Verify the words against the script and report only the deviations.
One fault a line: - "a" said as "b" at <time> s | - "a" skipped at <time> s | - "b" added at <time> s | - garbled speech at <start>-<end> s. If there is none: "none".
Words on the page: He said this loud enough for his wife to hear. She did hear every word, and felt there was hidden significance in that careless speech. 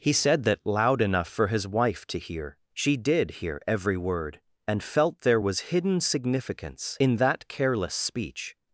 - "this" said as "that" at 0.5 s